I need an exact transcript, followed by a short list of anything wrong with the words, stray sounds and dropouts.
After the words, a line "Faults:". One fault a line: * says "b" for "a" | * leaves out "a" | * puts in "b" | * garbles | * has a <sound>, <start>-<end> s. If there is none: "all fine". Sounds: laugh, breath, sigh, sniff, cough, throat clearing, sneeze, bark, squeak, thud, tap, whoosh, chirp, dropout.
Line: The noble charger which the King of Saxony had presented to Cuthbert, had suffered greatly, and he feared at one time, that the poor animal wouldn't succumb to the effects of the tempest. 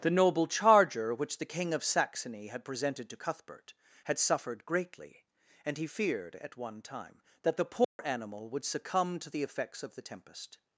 The noble charger which the King of Saxony had presented to Cuthbert, had suffered greatly, and he feared at one time, that the poor animal would succumb to the effects of the tempest.
Faults:
* has a dropout, 7.8-8.0 s
* says "would" for "wouldn't"